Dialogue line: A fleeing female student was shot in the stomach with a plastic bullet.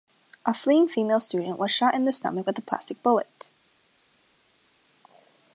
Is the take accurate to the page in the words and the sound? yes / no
yes